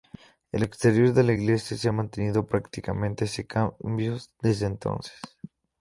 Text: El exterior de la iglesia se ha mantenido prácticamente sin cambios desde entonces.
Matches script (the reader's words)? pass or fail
pass